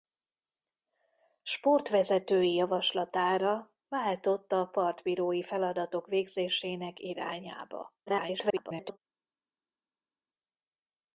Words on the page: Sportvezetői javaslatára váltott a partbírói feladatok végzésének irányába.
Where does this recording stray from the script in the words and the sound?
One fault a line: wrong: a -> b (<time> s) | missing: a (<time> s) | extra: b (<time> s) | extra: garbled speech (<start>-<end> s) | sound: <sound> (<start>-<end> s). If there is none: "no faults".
extra: garbled speech (8.1-9.0 s)